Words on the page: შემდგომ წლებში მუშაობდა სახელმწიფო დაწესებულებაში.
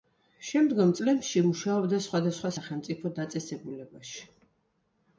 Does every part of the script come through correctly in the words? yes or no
no